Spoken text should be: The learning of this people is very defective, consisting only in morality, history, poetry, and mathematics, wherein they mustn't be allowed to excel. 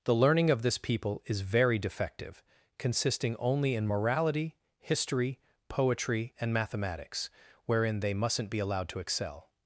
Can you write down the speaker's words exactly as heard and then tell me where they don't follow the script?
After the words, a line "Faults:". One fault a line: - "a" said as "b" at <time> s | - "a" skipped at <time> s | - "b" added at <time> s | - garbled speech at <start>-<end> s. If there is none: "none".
The learning of this people is very defective, consisting only in morality, history, poetry, and mathematics, wherein they mustn't be allowed to excel.
Faults:
none